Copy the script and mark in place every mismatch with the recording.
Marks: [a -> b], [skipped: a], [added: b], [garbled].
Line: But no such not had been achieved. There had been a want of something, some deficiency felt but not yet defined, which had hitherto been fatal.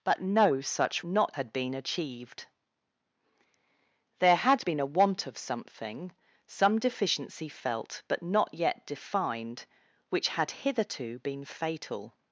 But no such not had been achieved. There had been a want of something, some deficiency felt but not yet defined, which had hitherto been fatal.